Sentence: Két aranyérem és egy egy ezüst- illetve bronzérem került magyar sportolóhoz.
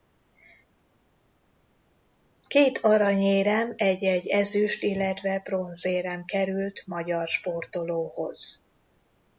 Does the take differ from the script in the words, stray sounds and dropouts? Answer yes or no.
yes